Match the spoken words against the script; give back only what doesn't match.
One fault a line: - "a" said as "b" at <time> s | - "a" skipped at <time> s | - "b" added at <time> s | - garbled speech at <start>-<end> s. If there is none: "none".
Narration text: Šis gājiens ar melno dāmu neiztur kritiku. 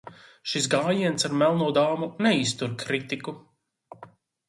none